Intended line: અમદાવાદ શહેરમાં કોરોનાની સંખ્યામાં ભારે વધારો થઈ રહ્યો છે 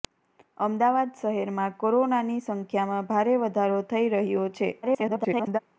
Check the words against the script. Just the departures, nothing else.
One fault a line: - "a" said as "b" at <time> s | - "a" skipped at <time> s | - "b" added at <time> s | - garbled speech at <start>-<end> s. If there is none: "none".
- garbled speech at 4.8-5.6 s